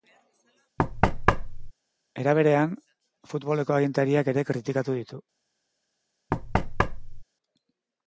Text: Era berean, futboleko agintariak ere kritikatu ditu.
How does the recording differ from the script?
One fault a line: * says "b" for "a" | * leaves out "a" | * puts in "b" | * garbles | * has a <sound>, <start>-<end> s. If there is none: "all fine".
* has a thud, 0.8-1.7 s
* has a thud, 6.3-7.2 s